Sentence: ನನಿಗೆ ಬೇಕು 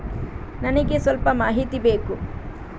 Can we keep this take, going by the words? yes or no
no